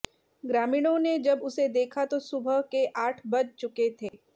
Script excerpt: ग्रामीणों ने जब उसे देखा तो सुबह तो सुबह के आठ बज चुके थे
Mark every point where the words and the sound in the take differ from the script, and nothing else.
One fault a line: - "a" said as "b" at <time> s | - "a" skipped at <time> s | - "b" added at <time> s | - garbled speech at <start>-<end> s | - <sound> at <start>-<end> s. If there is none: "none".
- "तो सुबह" skipped at 2.6 s
- dropout at 4.1-4.1 s